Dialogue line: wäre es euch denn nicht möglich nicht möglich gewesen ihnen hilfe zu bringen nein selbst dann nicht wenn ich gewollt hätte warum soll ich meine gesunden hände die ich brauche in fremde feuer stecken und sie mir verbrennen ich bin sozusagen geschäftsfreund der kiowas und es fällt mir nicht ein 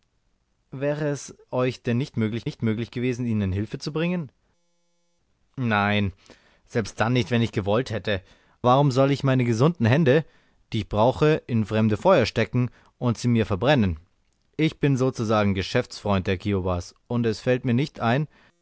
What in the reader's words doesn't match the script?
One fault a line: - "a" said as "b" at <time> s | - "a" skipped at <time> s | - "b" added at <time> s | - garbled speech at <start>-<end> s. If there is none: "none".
none